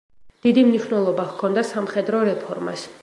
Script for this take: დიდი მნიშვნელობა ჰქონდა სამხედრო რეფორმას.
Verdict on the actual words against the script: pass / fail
pass